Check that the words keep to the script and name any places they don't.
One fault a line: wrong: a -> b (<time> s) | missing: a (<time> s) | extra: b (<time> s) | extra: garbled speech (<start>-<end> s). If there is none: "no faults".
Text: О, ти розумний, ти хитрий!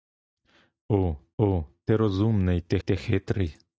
extra: о (1.4 s)
extra: ти (2.8 s)